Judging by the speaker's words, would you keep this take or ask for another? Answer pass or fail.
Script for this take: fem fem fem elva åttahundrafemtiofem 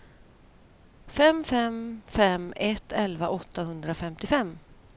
fail